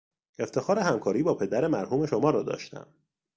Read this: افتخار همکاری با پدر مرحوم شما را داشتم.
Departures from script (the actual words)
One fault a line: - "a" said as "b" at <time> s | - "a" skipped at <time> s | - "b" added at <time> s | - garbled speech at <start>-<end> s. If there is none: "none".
none